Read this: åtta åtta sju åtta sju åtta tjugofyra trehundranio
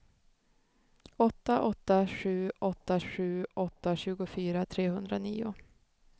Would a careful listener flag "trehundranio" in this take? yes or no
no